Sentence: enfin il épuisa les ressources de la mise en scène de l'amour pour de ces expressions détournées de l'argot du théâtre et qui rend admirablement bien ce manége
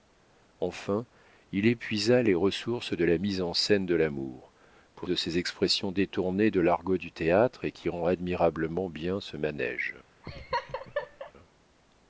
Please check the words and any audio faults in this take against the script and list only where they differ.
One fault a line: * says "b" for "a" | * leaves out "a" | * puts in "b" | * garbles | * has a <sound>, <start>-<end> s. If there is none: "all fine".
* has a laugh, 10.2-11.3 s